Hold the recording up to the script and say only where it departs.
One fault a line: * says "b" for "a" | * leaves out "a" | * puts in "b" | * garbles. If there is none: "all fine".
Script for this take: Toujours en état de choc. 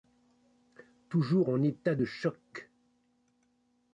all fine